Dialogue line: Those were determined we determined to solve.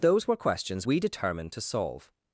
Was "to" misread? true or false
false